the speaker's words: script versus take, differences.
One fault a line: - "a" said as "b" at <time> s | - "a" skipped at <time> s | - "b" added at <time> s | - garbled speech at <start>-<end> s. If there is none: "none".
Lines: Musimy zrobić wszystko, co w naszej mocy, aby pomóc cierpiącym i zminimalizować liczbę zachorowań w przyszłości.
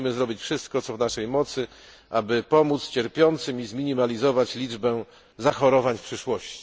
none